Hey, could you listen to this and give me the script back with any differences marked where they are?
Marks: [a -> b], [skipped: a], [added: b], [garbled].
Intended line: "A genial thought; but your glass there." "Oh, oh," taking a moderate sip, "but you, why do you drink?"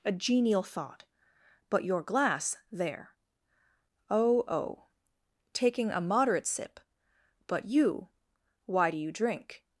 "A genial thought; but your glass there." "Oh, oh," taking a moderate sip, "but you, why do you drink?"